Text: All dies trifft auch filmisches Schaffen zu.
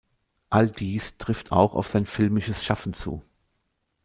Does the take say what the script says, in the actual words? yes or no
no